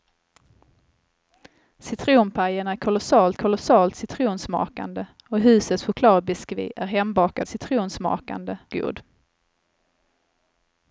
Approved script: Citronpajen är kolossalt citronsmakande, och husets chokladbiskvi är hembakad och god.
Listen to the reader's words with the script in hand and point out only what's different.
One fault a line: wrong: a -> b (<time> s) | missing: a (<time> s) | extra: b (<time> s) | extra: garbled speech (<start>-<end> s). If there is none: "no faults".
extra: kolossalt (3.3 s)
wrong: och -> citronsmakande (7.4 s)